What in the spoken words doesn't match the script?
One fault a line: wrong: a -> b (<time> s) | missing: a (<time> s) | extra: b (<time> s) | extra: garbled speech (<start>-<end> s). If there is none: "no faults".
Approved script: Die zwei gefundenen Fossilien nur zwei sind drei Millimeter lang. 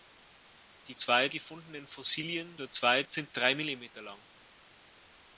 no faults